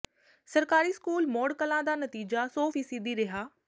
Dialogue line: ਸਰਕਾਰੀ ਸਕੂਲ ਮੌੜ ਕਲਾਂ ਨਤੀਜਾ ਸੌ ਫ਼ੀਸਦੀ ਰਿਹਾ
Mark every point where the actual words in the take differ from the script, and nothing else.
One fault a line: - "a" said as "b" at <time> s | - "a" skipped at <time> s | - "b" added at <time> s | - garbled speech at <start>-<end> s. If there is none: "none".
- "ਦਾ" added at 1.8 s